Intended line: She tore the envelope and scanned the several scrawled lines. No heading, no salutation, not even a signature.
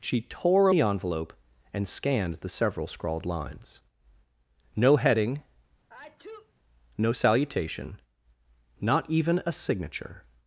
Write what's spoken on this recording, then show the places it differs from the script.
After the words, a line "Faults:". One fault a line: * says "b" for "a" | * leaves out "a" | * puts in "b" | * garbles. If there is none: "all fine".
She tore the envelope and scanned the several scrawled lines. No heading, no salutation, not even a signature.
Faults:
all fine